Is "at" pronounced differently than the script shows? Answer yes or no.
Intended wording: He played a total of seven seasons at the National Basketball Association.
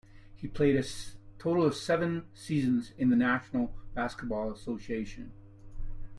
yes